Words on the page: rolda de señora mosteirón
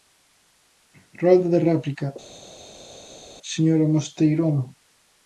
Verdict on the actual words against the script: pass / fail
fail